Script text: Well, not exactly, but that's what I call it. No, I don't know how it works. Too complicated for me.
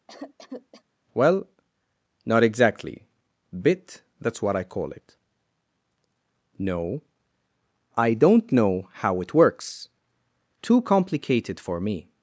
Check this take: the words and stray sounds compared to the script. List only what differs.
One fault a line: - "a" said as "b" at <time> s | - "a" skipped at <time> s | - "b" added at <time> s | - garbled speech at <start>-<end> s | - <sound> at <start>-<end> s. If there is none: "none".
- cough at 0.1-0.8 s
- "but" said as "bit" at 3.5 s